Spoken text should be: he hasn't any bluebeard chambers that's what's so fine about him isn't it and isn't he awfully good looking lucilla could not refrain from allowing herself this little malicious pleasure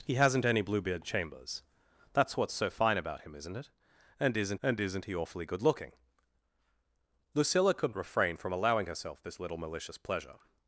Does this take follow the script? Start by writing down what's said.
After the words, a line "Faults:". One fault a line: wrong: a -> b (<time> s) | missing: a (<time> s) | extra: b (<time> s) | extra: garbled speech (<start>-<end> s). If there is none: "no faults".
he hasn't any bluebeard chambers that's what's so fine about him isn't it and isn't and isn't he awfully good looking lucilla could refrain from allowing herself this little malicious pleasure
Faults:
extra: and isn't (4.6 s)
missing: not (7.9 s)